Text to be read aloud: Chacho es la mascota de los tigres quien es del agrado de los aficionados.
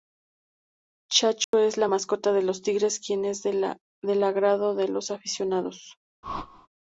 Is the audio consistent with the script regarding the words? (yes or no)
yes